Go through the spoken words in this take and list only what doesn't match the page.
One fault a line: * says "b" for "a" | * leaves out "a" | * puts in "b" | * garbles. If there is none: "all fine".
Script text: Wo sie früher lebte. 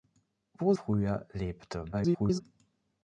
* leaves out "sie"
* garbles